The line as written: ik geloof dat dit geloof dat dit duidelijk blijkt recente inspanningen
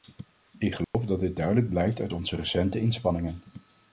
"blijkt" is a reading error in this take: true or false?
true